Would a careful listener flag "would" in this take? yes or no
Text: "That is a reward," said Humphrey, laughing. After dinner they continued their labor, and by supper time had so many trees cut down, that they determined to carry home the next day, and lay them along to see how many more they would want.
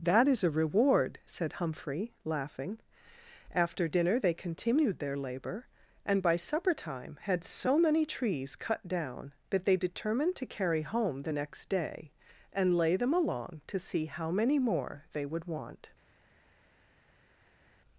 no